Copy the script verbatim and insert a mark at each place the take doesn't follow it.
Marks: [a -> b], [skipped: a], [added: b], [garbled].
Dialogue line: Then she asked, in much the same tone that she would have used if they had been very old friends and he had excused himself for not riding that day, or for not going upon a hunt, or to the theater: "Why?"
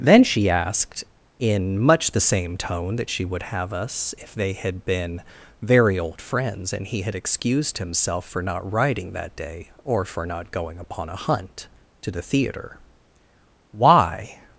Then she asked, in much the same tone that she would have [used -> us] if they had been very old friends and he had excused himself for not riding that day, or for not going upon a hunt, [skipped: or] to the theater: "Why?"